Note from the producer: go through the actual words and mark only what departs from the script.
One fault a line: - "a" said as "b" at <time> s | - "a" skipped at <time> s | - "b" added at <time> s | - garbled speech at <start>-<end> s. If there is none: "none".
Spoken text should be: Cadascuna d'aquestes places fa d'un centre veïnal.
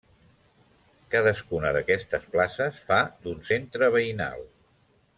none